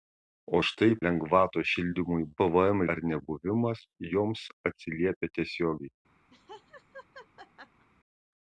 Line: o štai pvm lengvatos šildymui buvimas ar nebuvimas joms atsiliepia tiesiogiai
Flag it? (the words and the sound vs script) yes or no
yes